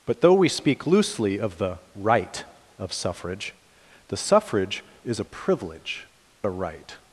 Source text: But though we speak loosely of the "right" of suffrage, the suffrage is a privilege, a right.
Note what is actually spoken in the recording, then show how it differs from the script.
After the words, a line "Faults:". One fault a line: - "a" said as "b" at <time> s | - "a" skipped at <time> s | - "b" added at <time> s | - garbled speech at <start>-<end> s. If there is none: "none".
But though we speak loosely of the "right" of suffrage, the suffrage is a privilege, a right.
Faults:
none